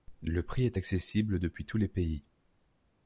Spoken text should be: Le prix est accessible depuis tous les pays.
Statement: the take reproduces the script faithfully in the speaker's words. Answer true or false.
true